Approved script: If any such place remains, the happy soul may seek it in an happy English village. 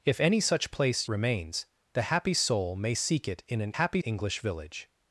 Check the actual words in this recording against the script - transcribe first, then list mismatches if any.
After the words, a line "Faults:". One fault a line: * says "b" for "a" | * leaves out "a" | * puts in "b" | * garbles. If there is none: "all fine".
If any such place remains, the happy soul may seek it in an happy English village.
Faults:
all fine